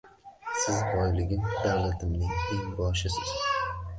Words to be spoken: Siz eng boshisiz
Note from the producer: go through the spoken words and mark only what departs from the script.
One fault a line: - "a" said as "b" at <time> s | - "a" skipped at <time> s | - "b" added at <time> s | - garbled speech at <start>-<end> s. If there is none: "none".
- "boyligim davlatimning" added at 0.9 s